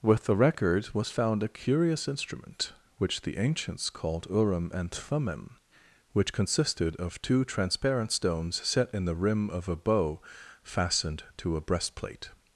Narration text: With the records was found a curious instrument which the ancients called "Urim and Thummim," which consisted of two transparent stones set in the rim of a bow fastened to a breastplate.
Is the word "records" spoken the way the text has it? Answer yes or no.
no